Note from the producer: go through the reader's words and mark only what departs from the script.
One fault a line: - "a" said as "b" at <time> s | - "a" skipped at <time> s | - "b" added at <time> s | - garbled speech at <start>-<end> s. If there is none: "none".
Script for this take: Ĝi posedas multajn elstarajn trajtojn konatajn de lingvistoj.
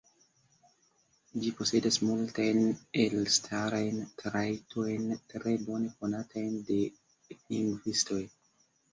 - "tre bone" added at 5.3 s